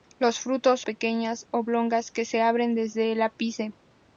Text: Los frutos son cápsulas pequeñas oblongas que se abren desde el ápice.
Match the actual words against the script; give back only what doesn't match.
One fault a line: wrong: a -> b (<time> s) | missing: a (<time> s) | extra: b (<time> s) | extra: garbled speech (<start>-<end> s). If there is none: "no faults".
missing: son cápsulas (0.8 s)